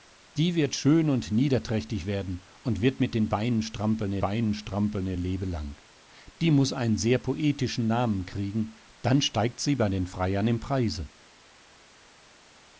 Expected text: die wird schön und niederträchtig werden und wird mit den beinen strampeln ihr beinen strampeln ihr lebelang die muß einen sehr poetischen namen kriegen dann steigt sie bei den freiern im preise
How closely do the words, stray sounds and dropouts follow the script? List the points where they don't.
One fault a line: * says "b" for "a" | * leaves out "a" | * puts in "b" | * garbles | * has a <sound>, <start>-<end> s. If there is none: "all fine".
all fine